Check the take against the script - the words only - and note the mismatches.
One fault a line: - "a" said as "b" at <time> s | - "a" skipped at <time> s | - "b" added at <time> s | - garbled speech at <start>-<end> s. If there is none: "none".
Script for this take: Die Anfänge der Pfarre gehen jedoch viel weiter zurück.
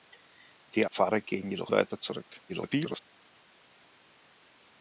- "Anfänge der" skipped at 0.9 s
- "viel" skipped at 1.7 s
- garbled speech at 2.5-3.0 s